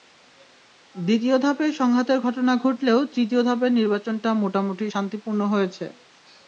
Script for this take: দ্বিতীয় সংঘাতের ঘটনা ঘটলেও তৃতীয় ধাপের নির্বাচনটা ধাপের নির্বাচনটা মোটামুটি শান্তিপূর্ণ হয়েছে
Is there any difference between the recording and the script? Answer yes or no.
yes